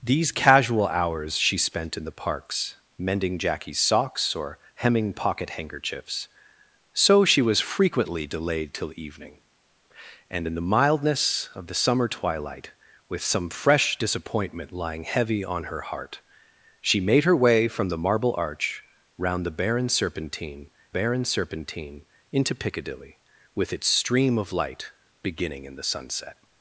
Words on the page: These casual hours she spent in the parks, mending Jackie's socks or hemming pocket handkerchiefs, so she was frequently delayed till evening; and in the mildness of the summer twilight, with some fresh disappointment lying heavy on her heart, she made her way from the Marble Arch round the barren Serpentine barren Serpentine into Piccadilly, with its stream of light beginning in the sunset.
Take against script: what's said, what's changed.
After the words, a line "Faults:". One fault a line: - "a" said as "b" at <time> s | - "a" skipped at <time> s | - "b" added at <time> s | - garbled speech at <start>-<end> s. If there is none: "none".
These casual hours she spent in the parks, mending Jackie's socks or hemming pocket handkerchiefs, so she was frequently delayed till evening; and in the mildness of the summer twilight, with some fresh disappointment lying heavy on her heart, she made her way from the Marble Arch round the barren Serpentine barren Serpentine into Piccadilly, with its stream of light beginning in the sunset.
Faults:
none